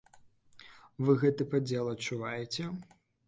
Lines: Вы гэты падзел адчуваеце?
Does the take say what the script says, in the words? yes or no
yes